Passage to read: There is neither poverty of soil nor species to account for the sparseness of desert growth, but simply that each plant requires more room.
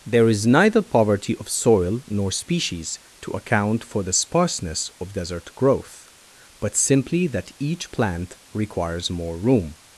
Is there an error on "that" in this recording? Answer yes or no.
no